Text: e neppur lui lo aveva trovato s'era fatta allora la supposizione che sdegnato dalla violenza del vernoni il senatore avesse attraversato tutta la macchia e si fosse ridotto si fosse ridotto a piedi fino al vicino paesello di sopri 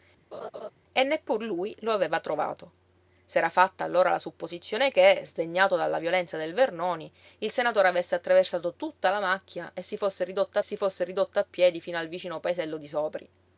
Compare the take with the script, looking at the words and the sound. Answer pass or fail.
fail